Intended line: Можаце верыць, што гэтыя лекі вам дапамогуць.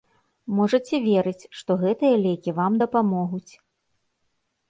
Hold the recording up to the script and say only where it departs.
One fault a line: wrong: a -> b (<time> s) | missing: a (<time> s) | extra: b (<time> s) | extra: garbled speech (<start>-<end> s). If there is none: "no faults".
no faults